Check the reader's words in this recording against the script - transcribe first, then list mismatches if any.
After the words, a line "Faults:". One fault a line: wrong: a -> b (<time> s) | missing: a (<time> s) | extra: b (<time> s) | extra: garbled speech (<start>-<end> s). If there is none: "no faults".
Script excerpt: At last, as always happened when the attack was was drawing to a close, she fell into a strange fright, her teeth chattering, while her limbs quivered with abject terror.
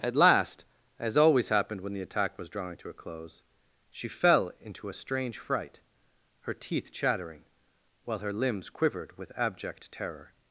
At last, as always happened when the attack was drawing to a close, she fell into a strange fright, her teeth chattering, while her limbs quivered with abject terror.
Faults:
missing: was (2.5 s)